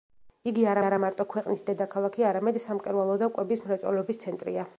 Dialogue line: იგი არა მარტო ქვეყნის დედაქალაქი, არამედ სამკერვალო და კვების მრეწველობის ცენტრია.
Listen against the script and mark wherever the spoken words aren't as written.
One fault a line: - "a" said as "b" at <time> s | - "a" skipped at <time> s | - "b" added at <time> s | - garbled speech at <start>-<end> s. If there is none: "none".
- "არა" added at 0.8 s